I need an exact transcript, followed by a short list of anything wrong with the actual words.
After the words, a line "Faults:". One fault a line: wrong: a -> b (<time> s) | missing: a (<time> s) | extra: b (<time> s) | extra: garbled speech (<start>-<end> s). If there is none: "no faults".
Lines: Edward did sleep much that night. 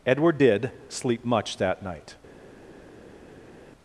Edward did sleep much that night.
Faults:
no faults